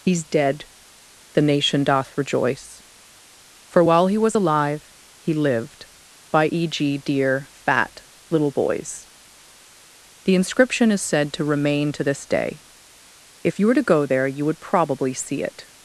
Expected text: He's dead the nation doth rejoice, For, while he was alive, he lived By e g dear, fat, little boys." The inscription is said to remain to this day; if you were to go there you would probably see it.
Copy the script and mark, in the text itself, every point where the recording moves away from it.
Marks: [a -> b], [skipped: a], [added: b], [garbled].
He's dead the nation doth rejoice, For, while he was alive, he lived By e g dear, fat, little boys." The inscription is said to remain to this day; if you were to go there you would probably see it.